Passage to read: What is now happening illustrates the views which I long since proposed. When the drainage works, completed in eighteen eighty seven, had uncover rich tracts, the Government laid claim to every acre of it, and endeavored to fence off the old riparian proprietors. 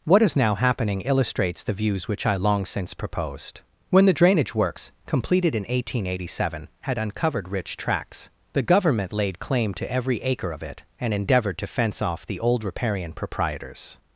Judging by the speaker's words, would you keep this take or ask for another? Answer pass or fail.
fail